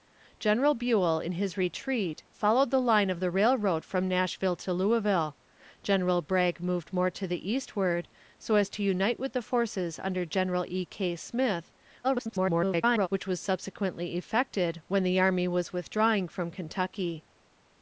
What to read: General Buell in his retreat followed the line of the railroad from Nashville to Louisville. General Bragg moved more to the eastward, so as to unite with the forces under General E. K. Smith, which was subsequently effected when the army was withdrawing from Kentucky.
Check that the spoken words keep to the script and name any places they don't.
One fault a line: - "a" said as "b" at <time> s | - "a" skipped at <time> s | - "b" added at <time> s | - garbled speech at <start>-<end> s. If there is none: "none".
- garbled speech at 12.0-13.1 s